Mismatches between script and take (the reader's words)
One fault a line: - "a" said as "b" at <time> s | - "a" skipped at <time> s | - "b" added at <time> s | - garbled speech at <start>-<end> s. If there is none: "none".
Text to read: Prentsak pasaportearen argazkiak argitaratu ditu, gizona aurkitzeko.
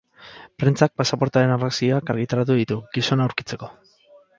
none